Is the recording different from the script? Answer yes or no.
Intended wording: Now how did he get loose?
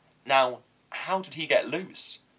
no